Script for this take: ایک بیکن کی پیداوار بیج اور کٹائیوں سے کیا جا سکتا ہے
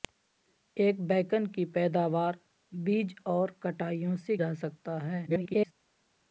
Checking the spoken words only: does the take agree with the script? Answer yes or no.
no